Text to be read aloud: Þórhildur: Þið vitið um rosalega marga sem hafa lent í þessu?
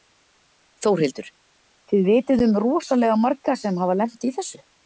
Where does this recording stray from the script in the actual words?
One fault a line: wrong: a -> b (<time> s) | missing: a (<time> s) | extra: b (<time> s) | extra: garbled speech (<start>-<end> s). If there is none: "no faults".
no faults